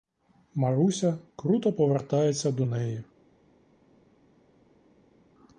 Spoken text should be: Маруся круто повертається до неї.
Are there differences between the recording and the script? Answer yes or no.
no